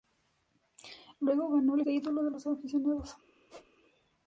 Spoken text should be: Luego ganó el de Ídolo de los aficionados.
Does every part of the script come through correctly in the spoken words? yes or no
yes